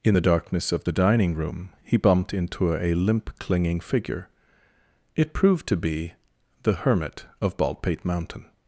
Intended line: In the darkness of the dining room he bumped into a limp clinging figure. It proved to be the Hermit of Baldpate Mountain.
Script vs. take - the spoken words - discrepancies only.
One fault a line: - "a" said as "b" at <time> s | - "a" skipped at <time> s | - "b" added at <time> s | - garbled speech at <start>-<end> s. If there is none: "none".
none